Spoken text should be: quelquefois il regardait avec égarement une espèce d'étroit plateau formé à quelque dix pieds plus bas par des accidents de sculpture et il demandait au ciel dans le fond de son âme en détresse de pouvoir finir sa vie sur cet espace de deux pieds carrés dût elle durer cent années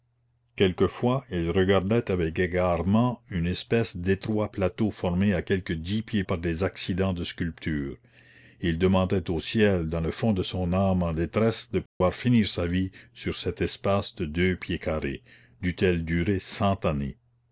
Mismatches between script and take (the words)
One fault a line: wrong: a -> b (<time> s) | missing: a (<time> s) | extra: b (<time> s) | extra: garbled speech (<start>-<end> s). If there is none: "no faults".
missing: plus bas (6.2 s)